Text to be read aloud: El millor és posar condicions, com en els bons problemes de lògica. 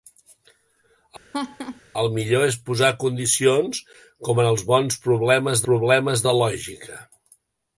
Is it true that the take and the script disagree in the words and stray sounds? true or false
true